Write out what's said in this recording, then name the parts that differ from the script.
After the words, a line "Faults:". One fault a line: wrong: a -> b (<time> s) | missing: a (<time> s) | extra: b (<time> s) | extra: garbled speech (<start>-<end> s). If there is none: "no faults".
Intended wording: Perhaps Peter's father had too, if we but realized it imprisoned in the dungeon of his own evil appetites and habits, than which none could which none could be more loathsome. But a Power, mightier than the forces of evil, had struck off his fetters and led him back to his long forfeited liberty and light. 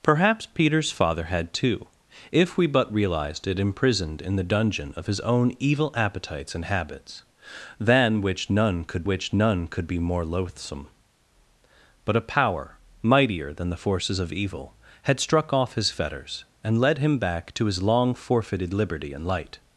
Perhaps Peter's father had too, if we but realized it imprisoned in the dungeon of his own evil appetites and habits, than which none could which none could be more loathsome. But a Power, mightier than the forces of evil, had struck off his fetters and led him back to his long forfeited liberty and light.
Faults:
no faults